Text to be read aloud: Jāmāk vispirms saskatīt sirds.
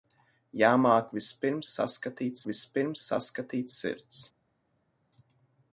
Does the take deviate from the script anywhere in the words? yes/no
yes